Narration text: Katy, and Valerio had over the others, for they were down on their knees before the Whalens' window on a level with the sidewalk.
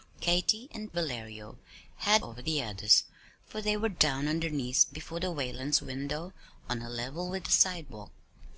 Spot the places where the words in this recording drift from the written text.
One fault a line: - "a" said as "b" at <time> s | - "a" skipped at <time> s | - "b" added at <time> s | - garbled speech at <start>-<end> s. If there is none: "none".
none